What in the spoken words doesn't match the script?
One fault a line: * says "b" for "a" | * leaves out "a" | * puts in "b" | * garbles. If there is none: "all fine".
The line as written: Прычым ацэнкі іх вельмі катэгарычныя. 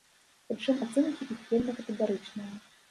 all fine